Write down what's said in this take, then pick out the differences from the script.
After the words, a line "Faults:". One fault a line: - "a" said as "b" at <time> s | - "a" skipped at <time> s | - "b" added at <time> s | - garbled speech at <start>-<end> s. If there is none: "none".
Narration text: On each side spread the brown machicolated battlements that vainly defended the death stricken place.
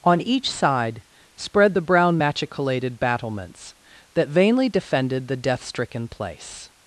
On each side spread the brown machicolated battlements that vainly defended the death stricken place.
Faults:
none